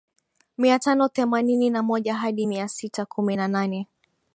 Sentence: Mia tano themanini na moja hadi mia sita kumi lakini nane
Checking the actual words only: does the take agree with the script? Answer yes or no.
no